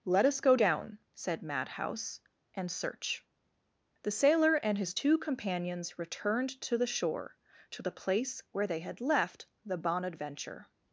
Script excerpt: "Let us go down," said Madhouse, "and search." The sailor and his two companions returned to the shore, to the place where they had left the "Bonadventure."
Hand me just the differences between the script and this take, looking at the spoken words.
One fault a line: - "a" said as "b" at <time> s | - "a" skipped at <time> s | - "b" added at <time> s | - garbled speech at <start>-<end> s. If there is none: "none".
none